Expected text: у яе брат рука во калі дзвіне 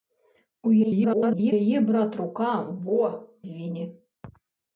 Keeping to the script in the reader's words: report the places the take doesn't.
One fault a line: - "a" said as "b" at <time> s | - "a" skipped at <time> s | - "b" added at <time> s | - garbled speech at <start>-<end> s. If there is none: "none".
- garbled speech at 0.8-1.5 s
- "калі" skipped at 3.0 s